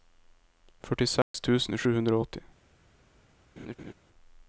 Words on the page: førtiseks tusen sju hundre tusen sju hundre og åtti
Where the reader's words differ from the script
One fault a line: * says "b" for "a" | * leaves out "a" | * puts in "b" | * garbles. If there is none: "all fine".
* leaves out "tusen sju hundre"